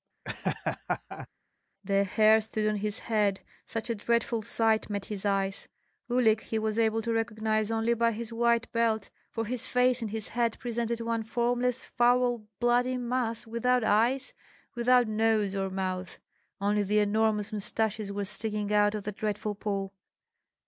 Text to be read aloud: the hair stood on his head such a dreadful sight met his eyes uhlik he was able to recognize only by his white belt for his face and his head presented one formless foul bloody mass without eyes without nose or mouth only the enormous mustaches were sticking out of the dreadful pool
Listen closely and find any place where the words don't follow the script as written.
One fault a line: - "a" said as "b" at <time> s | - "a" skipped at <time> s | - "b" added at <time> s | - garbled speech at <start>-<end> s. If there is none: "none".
none